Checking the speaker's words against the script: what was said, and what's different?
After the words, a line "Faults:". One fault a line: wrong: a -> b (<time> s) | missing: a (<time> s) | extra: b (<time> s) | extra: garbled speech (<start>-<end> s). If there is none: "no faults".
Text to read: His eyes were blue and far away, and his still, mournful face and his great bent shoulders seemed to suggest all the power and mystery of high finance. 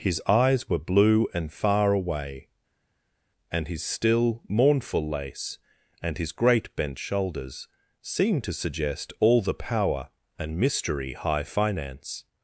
His eyes were blue and far away, and his still, mournful lace and his great bent shoulders seemed to suggest all the power and mystery high finance.
Faults:
wrong: face -> lace (5.1 s)
missing: of (11.1 s)